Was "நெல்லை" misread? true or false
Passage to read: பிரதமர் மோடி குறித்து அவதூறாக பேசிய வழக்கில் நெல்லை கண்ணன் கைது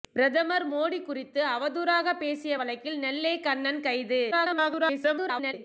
false